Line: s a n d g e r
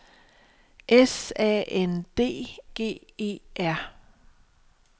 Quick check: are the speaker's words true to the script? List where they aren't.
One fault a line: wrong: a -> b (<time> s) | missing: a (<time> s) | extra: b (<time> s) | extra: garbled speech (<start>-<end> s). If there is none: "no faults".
no faults